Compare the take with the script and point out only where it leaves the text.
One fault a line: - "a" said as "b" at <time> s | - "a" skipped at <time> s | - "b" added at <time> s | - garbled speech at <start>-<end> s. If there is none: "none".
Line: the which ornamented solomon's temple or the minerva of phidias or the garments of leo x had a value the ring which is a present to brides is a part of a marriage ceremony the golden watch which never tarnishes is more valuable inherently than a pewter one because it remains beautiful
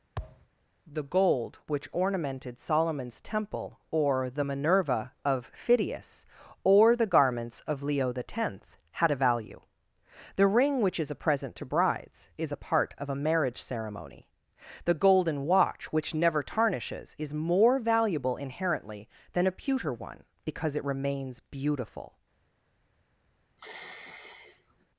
- "gold" added at 1.0 s